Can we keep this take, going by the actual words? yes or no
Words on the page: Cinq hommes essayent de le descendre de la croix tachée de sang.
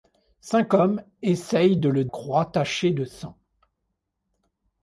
no